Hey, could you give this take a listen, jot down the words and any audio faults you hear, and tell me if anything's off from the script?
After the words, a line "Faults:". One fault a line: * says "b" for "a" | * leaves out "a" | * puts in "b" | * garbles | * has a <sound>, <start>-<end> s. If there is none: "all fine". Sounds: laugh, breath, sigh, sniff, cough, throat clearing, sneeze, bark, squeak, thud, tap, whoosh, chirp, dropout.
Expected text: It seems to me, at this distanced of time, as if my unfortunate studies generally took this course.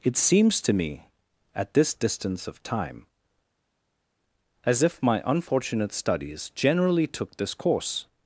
It seems to me, at this distance of time, as if my unfortunate studies generally took this course.
Faults:
* says "distance" for "distanced"